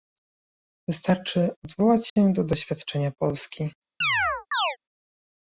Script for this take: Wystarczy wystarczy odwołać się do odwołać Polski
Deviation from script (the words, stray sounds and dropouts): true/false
true